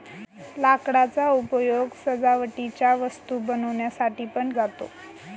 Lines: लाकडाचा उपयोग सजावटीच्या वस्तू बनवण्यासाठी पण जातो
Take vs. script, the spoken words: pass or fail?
pass